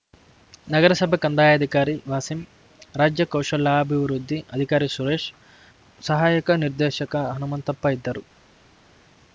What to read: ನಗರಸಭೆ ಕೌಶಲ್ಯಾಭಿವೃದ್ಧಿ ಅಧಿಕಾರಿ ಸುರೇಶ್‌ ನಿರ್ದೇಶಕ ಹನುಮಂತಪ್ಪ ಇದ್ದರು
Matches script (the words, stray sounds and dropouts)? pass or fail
fail